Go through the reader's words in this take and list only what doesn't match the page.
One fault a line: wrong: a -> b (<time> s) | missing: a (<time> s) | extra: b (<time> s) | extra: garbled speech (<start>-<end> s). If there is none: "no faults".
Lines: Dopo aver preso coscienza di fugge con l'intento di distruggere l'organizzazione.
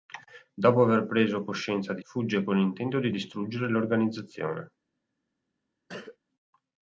no faults